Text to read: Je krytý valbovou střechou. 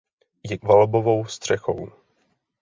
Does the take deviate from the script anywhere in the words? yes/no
yes